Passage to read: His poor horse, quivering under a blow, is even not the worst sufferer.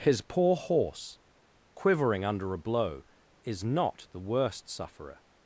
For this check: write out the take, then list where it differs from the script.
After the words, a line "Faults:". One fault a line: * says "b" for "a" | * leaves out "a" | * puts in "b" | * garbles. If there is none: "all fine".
His poor horse, quivering under a blow, is not the worst sufferer.
Faults:
* leaves out "even"